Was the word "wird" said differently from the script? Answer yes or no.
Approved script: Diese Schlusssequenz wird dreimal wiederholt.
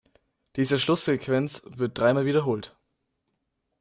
no